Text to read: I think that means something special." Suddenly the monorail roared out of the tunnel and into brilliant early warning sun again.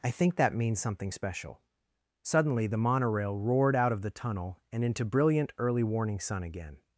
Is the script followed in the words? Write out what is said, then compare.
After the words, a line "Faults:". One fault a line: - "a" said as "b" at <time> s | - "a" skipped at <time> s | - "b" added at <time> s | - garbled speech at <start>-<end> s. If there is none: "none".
I think that means something special." Suddenly the monorail roared out of the tunnel and into brilliant early warning sun again.
Faults:
none